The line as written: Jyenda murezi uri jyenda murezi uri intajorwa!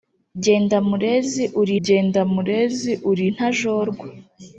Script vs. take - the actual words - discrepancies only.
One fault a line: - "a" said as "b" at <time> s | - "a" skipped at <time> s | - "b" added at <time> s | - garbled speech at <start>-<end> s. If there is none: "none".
none